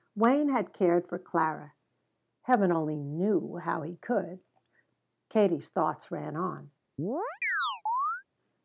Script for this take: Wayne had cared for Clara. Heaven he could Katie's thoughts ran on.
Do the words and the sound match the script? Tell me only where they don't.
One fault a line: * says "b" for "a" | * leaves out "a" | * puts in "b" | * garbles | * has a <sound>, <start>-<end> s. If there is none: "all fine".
* puts in "only knew how"
* has a chirp, 7.0-8.2 s